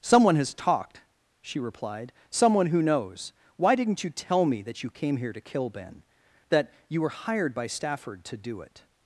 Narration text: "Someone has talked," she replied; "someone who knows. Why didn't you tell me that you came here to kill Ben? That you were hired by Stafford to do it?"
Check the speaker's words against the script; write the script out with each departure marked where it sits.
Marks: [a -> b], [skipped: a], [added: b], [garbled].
"Someone has talked," she replied; "someone who knows. Why didn't you tell me that you came here to kill Ben? That you were hired by Stafford to do it?"